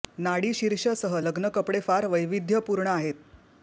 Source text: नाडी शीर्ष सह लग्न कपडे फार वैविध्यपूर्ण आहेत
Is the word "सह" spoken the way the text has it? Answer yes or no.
yes